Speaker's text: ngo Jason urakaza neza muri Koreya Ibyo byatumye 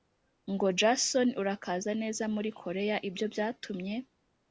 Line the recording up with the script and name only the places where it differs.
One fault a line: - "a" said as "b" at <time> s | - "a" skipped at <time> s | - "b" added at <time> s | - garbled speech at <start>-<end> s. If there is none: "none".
none